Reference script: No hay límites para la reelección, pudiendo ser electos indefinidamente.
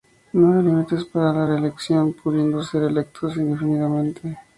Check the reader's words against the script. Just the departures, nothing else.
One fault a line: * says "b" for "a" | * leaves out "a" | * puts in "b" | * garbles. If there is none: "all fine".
all fine